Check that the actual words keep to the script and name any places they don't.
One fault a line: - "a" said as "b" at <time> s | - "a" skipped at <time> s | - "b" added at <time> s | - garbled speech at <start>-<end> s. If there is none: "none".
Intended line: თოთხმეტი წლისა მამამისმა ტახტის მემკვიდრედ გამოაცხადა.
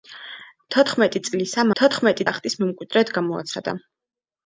- "მამამისმა" said as "თოთხმეტი" at 1.8 s